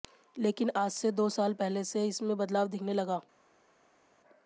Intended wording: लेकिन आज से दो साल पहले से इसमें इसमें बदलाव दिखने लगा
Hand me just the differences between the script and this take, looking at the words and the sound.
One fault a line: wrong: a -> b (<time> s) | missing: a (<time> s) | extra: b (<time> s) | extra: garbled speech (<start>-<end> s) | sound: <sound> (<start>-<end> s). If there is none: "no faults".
missing: इसमें (2.4 s)